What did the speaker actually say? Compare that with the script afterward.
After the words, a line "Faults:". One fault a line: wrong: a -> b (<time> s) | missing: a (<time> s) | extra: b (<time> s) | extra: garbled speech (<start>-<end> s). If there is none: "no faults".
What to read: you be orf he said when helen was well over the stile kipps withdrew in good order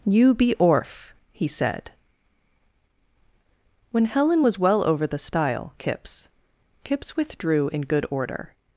you be orf he said when helen was well over the stile kipps kipps withdrew in good order
Faults:
extra: kipps (6.8 s)